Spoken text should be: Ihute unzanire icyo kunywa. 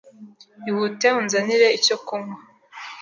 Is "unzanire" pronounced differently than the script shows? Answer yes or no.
no